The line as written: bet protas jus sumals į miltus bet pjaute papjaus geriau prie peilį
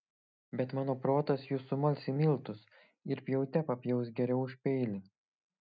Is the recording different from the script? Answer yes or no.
yes